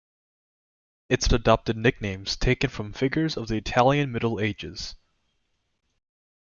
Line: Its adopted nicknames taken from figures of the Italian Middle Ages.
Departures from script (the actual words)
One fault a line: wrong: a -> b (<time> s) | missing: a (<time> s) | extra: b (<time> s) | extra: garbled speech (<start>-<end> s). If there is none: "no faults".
no faults